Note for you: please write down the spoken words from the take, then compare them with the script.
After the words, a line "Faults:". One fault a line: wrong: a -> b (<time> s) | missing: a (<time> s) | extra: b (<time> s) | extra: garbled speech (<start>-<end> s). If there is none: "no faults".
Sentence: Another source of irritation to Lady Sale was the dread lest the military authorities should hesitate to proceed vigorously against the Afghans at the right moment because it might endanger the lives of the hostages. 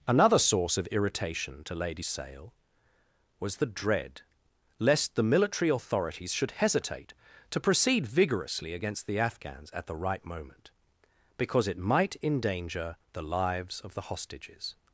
Another source of irritation to Lady Sale was the dread lest the military authorities should hesitate to proceed vigorously against the Afghans at the right moment because it might endanger the lives of the hostages.
Faults:
no faults